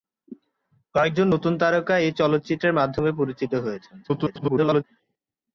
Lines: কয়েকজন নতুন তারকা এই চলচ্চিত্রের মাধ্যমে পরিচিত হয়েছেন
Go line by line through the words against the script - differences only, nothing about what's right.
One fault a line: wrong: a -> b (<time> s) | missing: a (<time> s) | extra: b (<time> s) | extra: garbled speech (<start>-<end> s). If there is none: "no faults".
extra: garbled speech (4.0-4.8 s)